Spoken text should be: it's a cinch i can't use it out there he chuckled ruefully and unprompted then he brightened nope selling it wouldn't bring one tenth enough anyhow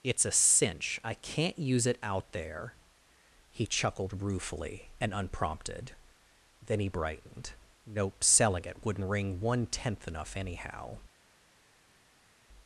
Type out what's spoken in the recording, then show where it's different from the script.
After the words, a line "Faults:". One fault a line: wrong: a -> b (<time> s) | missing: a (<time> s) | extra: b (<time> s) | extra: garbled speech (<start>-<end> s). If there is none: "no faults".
it's a cinch i can't use it out there he chuckled ruefully and unprompted then he brightened nope selling it wouldn't ring one tenth enough anyhow
Faults:
wrong: bring -> ring (9.1 s)